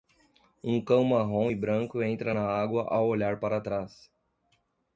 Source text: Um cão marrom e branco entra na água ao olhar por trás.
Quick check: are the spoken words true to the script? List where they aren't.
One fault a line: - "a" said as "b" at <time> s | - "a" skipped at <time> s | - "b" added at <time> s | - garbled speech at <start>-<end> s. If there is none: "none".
- "por" said as "para" at 3.4 s